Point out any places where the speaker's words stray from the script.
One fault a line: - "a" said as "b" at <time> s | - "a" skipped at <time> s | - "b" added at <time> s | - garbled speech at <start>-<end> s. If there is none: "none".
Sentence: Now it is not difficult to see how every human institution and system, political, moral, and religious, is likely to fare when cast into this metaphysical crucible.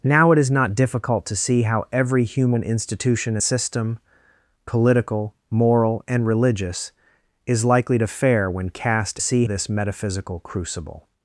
- "and" skipped at 3.4 s
- "into" said as "see" at 9.2 s